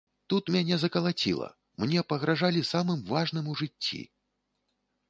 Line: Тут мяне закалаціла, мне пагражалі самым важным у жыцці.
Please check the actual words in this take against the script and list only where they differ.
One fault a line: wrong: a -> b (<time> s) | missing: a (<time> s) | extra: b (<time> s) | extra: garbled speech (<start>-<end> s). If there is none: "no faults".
no faults